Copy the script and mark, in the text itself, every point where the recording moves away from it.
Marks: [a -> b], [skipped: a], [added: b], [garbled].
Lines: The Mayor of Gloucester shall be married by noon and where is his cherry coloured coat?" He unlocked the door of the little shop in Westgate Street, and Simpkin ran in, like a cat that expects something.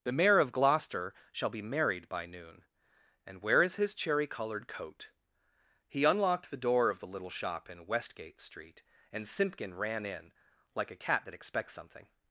The Mayor of Gloucester shall be married by noon and where is his cherry coloured coat?" He unlocked the door of the little shop in Westgate Street, and Simpkin ran in, like a cat that expects something.